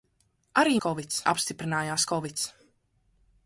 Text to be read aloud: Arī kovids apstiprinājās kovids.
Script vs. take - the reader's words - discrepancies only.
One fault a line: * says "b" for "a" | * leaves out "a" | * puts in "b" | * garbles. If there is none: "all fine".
all fine